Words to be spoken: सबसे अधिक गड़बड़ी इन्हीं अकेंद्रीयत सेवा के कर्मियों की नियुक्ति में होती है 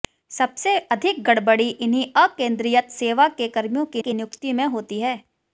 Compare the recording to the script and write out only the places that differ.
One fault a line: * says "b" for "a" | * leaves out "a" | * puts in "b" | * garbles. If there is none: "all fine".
* puts in "की"